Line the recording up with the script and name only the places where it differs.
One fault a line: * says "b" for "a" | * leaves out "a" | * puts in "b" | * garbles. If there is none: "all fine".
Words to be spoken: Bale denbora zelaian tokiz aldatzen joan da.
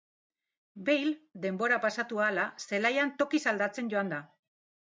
* puts in "pasatu ahala"